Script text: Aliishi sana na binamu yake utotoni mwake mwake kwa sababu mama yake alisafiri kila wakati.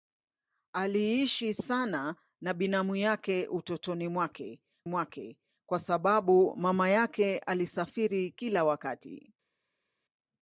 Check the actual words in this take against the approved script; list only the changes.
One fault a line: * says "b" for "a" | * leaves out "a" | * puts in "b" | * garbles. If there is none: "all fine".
all fine